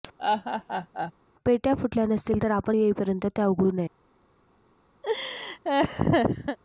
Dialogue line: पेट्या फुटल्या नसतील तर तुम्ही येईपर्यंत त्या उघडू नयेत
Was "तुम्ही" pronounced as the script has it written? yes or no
no